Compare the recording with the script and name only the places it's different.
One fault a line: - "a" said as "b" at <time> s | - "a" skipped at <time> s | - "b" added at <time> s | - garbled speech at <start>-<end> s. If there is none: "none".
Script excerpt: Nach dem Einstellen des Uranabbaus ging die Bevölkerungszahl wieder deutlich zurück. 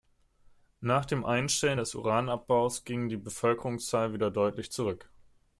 none